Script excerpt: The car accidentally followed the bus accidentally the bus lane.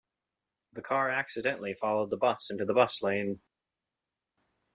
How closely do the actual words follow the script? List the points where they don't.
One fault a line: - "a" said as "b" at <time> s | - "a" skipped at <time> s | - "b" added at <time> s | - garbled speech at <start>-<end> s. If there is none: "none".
- "accidentally" said as "into" at 2.5 s